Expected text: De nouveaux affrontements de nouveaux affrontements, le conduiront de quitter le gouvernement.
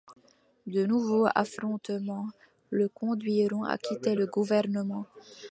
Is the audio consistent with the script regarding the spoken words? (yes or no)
no